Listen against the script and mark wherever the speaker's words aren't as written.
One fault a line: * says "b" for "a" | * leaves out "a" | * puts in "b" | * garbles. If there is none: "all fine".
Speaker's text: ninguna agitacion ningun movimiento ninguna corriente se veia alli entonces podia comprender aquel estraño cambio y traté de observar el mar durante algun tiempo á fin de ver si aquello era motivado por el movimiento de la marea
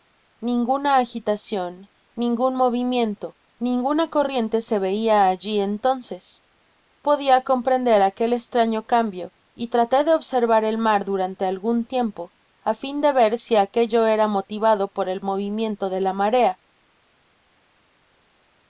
all fine